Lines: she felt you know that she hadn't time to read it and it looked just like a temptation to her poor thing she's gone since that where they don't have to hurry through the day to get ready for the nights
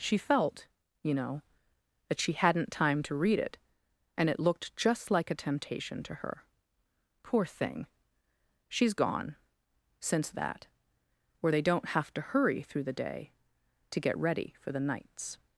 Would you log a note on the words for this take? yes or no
no